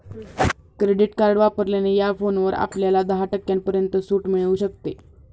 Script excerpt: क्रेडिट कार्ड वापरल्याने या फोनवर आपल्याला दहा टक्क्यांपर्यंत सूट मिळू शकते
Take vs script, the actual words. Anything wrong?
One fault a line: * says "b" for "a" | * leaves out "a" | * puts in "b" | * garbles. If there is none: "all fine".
all fine